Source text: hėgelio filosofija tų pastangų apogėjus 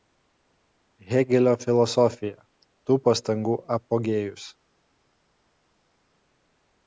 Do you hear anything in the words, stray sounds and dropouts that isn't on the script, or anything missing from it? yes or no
no